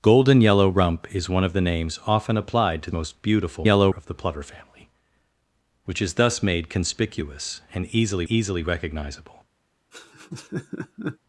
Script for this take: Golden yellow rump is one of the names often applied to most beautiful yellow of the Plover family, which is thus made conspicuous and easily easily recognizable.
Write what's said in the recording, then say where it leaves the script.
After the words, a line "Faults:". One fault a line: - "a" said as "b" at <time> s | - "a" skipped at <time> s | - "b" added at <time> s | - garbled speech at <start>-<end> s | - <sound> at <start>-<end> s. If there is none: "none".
Golden yellow rump is one of the names often applied to most beautiful yellow of the Plover family, which is thus made conspicuous and easily easily recognizable.
Faults:
- laugh at 9.9-11.2 s